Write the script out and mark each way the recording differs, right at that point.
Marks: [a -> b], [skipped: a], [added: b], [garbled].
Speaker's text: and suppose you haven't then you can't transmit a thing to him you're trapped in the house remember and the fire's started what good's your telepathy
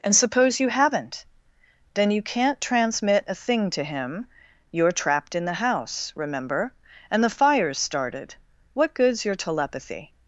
and suppose you haven't then you can't transmit a thing to him you're trapped in the house remember and the fire's started what good's your telepathy